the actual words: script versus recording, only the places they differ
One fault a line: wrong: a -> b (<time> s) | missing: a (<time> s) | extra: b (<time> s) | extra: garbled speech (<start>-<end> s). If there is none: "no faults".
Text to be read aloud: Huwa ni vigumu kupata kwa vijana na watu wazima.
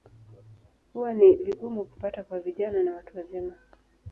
no faults